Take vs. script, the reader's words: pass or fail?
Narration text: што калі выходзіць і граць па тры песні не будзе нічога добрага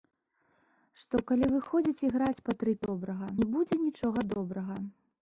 fail